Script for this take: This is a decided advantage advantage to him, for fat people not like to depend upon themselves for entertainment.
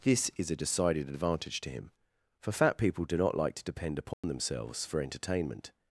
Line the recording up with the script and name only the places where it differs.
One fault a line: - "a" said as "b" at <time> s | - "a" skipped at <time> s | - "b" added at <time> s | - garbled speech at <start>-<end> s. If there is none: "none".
- "advantage" skipped at 1.6 s
- "do" added at 3.0 s